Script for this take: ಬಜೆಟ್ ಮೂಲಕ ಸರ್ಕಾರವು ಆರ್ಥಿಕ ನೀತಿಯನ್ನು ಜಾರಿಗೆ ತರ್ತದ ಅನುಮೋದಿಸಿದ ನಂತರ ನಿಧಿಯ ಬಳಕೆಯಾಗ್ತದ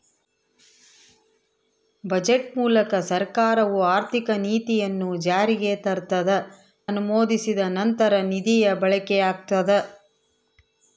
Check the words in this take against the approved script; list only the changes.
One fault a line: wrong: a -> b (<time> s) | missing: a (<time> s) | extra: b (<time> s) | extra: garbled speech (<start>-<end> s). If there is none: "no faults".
no faults